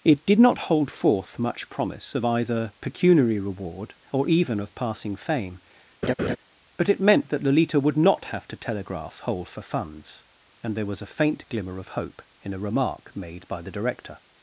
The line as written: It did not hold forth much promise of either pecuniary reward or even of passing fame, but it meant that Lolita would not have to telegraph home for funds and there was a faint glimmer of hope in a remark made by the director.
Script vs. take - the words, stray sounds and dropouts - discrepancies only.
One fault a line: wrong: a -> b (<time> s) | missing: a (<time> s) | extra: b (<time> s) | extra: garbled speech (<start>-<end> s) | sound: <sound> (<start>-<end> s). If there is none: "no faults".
sound: laugh (6.0-6.4 s)
wrong: home -> hole (9.2 s)